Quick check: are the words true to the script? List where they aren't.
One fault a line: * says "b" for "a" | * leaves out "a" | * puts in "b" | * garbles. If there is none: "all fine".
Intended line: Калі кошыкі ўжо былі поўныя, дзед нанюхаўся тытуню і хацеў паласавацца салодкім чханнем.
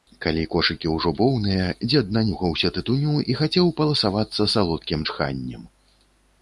* leaves out "былі"